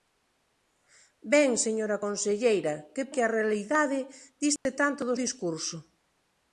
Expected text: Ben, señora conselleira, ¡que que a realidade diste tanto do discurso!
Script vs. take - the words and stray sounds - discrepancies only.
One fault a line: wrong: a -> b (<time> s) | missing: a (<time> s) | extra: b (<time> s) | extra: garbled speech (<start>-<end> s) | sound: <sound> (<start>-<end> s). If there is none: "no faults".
sound: dropout (4.6-4.7 s)